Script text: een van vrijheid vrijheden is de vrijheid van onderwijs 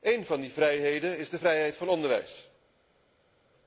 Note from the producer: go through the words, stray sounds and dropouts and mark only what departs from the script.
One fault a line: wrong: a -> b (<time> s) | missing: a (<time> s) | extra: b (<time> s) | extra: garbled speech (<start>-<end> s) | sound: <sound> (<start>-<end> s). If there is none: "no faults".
wrong: vrijheid -> die (0.4 s)